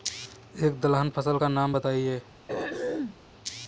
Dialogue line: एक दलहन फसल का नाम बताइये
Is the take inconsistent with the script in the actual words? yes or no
no